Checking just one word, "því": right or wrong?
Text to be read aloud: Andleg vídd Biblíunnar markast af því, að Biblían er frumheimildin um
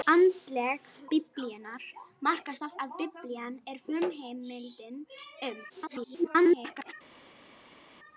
wrong